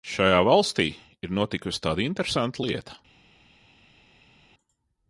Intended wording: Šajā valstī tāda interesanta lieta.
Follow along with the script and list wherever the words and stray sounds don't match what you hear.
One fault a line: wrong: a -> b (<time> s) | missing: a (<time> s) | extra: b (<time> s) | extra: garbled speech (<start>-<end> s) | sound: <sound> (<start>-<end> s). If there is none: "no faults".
extra: ir notikusi (1.2 s)